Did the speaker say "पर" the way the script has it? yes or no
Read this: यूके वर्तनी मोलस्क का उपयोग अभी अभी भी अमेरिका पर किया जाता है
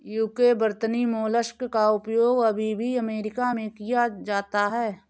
no